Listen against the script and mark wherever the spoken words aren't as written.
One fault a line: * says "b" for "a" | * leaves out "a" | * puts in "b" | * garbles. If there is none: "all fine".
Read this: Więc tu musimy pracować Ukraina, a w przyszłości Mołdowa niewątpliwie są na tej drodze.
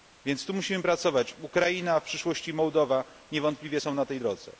all fine